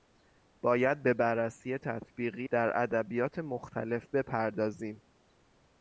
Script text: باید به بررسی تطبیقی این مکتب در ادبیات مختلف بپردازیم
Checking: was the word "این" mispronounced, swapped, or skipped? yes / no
yes